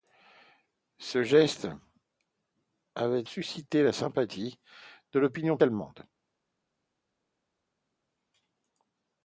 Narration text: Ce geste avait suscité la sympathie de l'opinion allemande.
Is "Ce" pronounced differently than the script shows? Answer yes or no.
no